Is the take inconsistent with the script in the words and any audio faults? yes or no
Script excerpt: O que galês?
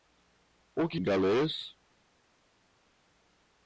no